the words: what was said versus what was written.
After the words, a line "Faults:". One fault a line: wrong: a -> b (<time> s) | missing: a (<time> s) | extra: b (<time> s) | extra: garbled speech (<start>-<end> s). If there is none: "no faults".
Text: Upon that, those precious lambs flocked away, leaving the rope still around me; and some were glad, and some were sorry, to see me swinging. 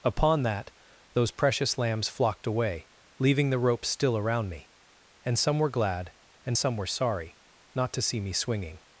Upon that, those precious lambs flocked away, leaving the rope still around me; and some were glad, and some were sorry, not to see me swinging.
Faults:
extra: not (7.7 s)